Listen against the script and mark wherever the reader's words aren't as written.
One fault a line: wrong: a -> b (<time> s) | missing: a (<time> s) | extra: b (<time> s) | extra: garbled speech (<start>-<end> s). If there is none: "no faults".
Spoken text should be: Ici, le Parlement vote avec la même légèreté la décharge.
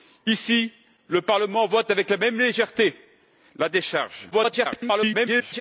extra: garbled speech (4.3-5.6 s)